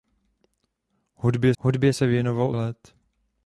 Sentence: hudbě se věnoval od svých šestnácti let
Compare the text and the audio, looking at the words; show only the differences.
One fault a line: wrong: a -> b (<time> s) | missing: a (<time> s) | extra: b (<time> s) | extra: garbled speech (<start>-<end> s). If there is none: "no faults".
extra: hudbě (1.6 s)
missing: od svých šestnácti (2.5 s)